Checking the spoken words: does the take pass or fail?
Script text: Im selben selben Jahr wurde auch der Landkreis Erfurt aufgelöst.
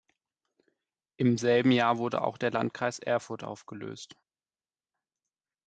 fail